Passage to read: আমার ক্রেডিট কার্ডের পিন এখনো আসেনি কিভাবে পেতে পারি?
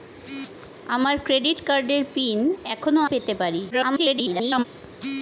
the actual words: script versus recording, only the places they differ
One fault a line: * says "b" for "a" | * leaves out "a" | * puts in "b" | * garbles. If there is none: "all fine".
* leaves out "আসেনি কিভাবে"
* garbles